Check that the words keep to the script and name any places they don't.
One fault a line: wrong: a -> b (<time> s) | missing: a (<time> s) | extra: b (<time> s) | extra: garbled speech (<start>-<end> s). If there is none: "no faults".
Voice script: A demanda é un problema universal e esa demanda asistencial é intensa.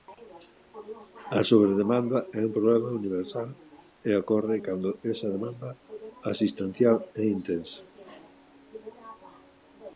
wrong: demanda -> sobredemanda (1.5 s)
extra: ocorre cando (4.2 s)